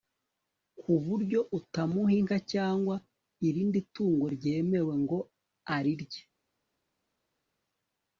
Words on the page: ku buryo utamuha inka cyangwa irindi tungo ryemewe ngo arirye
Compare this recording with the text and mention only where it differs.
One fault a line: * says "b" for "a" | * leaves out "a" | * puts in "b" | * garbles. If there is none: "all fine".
all fine